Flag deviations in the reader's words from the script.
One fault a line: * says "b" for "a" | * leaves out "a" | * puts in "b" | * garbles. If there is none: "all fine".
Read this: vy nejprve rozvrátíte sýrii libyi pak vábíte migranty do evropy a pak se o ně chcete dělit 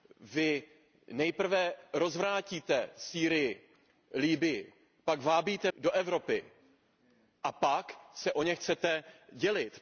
* leaves out "migranty"